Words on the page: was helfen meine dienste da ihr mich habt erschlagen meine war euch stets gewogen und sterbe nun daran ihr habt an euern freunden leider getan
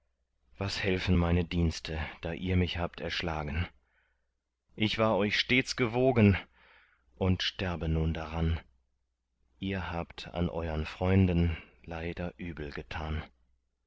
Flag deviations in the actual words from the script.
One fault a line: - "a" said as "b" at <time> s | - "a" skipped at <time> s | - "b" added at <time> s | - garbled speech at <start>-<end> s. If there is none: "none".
- "meine" said as "ich" at 4.8 s
- "übel" added at 12.4 s